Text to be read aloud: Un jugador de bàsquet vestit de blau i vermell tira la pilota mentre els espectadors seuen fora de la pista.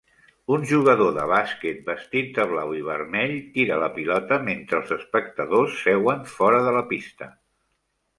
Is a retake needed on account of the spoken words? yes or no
no